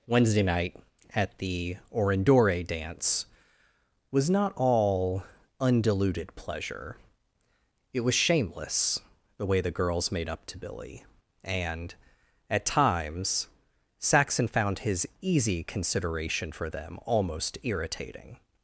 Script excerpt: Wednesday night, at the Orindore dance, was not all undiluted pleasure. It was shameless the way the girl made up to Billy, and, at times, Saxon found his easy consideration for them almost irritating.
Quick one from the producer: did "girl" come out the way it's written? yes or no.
no